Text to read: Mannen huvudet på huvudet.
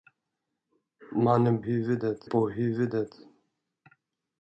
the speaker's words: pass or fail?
pass